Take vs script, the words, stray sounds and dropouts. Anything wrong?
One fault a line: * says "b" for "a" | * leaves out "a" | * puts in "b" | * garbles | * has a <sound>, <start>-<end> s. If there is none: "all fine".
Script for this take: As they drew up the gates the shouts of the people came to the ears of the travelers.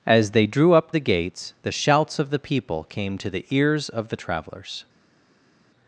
all fine